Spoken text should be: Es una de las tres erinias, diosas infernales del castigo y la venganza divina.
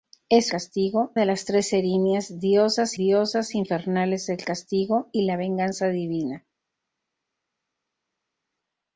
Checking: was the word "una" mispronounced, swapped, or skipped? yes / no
yes